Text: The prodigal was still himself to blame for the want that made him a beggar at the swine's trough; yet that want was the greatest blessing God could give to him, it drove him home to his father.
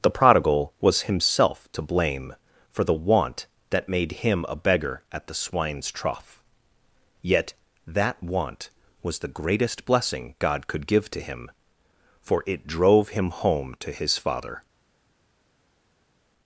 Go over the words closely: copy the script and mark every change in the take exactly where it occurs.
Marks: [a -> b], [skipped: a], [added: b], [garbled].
The prodigal was [skipped: still] himself to blame for the want that made him a beggar at the swine's trough; yet that want was the greatest blessing God could give to him, [added: for] it drove him home to his father.